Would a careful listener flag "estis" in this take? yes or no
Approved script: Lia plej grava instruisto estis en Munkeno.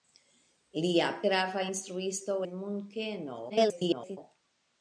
yes